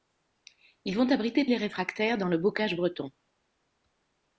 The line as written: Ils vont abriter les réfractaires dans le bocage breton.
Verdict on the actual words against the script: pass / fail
pass